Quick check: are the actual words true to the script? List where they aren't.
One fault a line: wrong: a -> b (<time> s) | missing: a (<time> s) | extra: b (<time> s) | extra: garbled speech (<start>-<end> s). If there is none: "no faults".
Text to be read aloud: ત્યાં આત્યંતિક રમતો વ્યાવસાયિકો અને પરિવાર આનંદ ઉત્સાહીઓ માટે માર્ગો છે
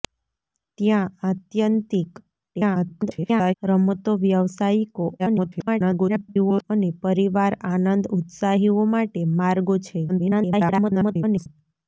extra: garbled speech (2.5-3.5 s)
extra: garbled speech (5.2-6.6 s)
extra: garbled speech (10.1-11.5 s)